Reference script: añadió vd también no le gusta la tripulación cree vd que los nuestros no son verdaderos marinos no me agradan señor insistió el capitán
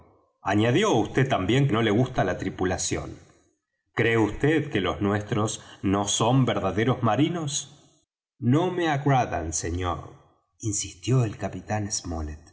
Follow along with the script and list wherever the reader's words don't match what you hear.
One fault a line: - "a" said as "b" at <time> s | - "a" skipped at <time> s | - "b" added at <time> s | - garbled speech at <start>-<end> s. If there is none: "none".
none